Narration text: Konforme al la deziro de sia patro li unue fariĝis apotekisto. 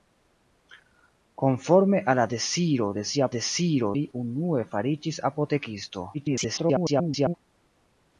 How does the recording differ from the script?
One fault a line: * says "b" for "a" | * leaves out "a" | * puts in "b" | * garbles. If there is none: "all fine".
* says "deziro" for "patro"
* garbles